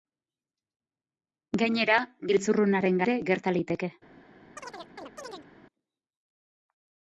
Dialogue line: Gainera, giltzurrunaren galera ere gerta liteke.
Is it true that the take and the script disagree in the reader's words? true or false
true